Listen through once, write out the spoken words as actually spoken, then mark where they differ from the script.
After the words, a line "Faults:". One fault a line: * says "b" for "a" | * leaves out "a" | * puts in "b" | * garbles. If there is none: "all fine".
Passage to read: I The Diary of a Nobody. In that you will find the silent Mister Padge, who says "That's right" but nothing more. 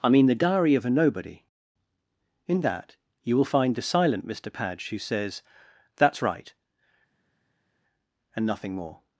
I mean The Diary of a Nobody. In that you will find the silent Mister Padge, who says "That's right" and nothing more.
Faults:
* puts in "mean"
* says "and" for "but"